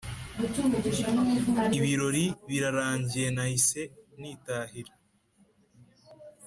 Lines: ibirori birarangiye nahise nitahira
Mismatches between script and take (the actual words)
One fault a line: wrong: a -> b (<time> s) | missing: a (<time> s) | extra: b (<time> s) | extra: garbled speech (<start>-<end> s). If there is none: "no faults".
no faults